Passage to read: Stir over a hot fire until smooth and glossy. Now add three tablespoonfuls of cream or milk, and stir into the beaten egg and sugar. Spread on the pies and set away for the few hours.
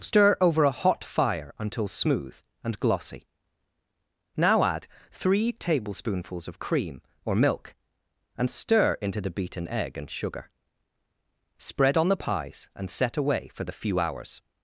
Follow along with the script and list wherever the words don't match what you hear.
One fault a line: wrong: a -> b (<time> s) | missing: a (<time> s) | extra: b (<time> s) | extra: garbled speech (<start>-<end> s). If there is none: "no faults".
no faults